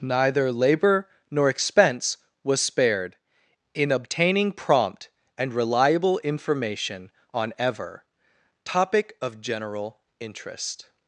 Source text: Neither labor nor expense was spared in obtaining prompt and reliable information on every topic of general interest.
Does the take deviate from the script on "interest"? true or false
false